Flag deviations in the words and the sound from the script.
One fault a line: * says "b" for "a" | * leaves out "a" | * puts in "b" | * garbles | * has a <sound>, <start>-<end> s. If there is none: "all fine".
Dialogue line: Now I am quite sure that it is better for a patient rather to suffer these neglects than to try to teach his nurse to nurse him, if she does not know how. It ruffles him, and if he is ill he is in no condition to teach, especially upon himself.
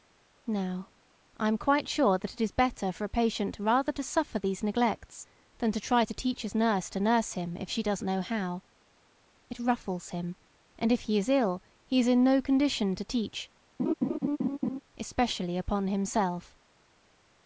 * leaves out "not"
* has a laugh, 13.8-14.8 s